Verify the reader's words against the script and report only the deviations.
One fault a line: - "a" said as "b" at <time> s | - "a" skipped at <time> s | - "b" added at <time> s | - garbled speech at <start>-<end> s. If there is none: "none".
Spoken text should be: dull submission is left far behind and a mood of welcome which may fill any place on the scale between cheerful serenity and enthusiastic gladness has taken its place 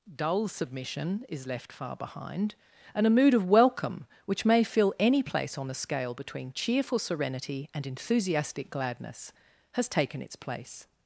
none